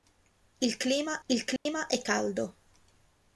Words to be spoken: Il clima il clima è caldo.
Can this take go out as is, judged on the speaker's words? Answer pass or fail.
pass